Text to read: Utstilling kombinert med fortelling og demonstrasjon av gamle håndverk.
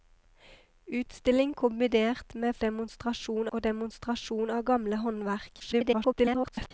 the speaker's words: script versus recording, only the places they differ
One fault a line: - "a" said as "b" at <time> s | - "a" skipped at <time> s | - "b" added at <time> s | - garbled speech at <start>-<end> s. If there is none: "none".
- "fortelling" said as "demonstrasjon" at 2.6 s
- garbled speech at 5.6-6.7 s